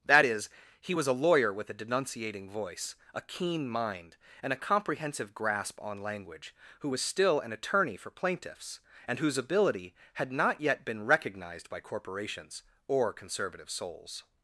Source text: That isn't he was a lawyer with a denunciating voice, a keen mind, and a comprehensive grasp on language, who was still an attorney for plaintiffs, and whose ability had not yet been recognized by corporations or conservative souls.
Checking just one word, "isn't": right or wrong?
wrong